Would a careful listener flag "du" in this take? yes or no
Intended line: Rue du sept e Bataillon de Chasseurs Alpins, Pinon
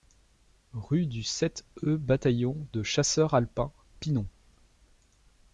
no